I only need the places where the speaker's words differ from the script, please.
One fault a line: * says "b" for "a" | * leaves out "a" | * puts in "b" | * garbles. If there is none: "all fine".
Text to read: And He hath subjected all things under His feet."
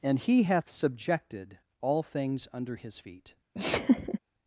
all fine